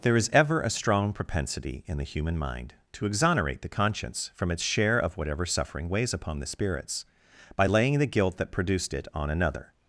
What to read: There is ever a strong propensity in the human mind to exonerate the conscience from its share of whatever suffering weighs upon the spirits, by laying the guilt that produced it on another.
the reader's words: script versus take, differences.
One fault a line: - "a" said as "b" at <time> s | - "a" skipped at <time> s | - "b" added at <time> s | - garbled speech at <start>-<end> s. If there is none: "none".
none